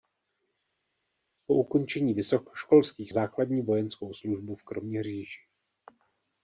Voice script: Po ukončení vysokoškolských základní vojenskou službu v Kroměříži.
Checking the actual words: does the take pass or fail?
pass